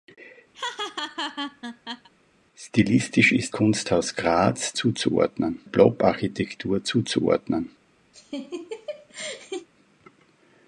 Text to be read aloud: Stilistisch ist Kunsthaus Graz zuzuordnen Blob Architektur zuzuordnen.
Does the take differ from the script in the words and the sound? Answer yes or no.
yes